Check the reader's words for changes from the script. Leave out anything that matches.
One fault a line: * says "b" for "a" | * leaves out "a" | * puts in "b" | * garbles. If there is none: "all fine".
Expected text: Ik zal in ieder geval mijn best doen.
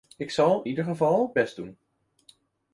* leaves out "in"
* leaves out "mijn"